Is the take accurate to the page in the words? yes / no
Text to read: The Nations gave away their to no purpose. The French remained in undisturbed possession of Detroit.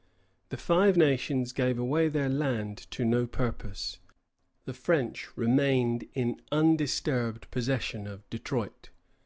no